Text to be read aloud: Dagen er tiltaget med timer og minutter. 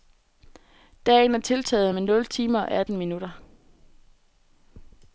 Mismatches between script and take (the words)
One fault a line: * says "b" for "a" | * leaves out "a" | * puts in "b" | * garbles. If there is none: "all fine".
* puts in "nul"
* puts in "atten"